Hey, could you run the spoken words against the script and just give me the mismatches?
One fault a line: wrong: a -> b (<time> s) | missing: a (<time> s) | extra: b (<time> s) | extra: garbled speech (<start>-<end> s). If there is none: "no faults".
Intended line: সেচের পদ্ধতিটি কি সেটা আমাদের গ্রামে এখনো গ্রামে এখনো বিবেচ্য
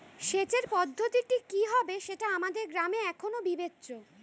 extra: হবে (1.6 s)
missing: গ্রামে এখনো (3.4 s)